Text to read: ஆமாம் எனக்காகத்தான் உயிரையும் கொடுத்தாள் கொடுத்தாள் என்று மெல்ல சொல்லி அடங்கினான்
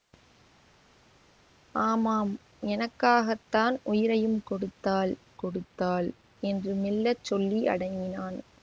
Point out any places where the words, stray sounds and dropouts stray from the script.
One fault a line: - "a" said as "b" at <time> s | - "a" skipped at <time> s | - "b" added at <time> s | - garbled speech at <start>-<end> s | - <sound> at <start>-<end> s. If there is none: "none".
none